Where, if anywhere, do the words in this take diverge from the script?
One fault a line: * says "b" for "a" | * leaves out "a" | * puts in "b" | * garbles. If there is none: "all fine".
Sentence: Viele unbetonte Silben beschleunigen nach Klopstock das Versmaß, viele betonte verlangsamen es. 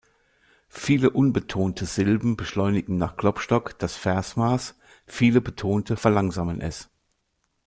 all fine